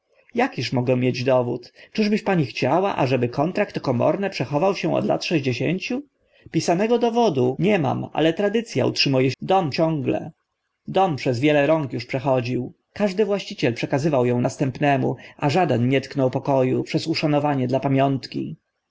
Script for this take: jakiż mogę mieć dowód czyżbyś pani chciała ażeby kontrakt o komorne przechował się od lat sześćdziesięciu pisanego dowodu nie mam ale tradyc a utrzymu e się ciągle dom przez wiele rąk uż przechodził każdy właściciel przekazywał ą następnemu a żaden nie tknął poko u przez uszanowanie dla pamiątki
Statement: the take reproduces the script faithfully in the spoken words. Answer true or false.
false